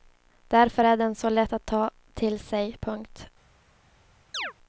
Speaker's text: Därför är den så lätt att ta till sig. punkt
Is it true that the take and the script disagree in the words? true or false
false